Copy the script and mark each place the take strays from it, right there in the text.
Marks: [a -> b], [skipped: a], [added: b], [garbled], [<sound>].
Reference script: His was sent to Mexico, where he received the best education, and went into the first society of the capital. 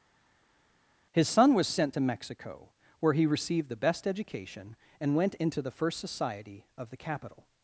His [added: son] was sent to Mexico, where he received the best education, and went into the first society of the capital.